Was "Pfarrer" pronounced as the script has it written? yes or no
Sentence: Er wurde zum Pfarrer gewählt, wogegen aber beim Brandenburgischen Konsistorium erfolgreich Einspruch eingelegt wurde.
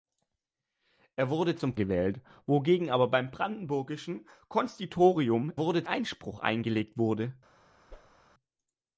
no